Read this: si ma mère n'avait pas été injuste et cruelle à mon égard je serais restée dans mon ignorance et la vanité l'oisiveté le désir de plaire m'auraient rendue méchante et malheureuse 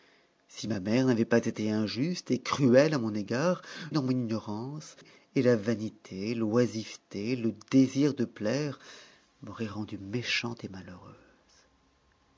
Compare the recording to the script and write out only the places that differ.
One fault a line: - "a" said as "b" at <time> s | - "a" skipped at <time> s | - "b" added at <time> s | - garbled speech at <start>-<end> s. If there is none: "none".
- "je serais restée" skipped at 3.6 s